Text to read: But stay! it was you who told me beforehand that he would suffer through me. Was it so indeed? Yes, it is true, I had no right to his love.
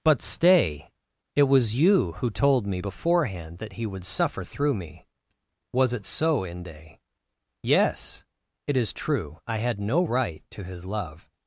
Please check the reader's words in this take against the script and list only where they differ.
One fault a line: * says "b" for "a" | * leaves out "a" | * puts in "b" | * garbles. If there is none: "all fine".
* says "inde" for "indeed"